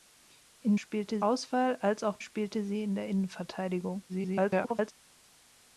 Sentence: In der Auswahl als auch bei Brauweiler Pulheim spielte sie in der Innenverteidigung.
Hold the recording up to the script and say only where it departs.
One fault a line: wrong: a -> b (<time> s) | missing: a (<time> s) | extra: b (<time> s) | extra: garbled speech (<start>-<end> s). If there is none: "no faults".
wrong: der -> spielte (0.7 s)
missing: bei Brauweiler Pulheim (2.2 s)
extra: garbled speech (4.1-4.9 s)